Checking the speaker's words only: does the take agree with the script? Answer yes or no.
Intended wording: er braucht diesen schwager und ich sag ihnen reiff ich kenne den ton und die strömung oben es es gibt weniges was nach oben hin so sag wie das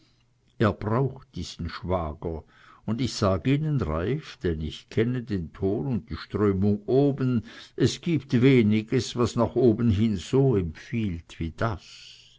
no